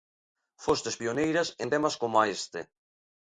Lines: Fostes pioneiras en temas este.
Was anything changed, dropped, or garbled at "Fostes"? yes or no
no